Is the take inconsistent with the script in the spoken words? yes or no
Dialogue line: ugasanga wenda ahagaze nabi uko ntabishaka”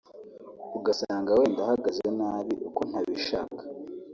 no